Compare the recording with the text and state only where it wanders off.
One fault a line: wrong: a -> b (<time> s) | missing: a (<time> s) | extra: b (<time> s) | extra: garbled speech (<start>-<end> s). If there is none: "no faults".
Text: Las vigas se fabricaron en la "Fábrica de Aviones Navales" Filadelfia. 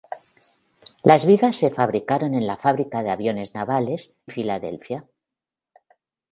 no faults